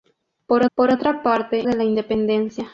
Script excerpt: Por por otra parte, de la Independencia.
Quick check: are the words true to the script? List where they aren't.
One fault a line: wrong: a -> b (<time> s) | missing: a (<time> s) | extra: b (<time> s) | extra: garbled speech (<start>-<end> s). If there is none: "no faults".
no faults